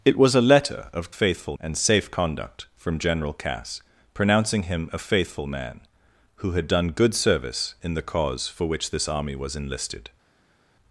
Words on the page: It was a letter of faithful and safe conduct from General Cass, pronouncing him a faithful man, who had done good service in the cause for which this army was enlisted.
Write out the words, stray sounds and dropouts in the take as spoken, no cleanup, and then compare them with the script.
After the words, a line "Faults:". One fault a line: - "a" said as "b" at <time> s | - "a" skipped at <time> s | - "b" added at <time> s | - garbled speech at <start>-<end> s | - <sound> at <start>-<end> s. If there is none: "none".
It was a letter of faithful and safe conduct from General Cass, pronouncing him a faithful man, who had done good service in the cause for which this army was enlisted.
Faults:
none